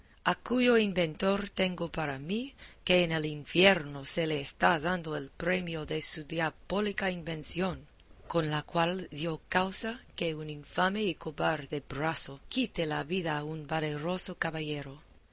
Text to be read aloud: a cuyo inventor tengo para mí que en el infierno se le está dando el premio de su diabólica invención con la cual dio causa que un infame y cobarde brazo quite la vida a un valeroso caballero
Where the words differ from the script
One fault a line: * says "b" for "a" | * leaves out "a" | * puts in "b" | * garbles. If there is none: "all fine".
all fine